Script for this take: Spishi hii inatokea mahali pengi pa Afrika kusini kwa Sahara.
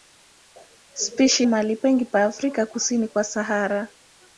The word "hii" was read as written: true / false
false